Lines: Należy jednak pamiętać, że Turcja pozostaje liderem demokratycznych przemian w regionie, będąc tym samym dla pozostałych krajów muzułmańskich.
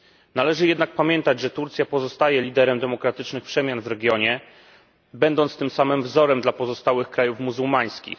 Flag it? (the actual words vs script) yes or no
yes